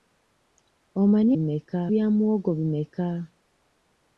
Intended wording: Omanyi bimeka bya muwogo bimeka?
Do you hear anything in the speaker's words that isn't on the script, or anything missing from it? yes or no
no